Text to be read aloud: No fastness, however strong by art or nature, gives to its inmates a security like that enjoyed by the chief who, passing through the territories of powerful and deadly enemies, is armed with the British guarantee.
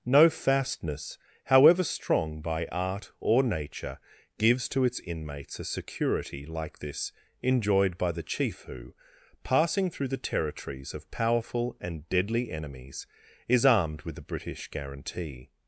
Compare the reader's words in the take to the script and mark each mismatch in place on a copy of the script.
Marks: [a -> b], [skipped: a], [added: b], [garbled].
No fastness, however strong by art or nature, gives to its inmates a security like [that -> this] enjoyed by the chief who, passing through the territories of powerful and deadly enemies, is armed with the British guarantee.